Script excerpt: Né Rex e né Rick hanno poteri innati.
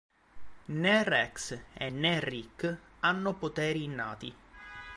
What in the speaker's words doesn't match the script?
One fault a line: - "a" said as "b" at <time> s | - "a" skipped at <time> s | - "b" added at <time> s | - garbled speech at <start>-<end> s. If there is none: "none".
none